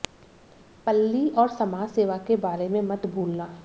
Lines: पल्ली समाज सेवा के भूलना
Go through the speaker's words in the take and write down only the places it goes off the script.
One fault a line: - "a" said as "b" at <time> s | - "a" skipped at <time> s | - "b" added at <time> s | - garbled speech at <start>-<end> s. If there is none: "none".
- "और" added at 1.3 s
- "बारे में मत" added at 2.4 s